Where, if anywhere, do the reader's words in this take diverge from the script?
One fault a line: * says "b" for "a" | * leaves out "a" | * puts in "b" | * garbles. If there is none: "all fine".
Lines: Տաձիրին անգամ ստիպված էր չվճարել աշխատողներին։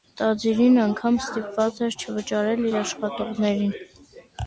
* puts in "իր"